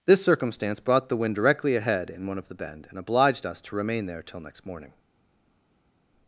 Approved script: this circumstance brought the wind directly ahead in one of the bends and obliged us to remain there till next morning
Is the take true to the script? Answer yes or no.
no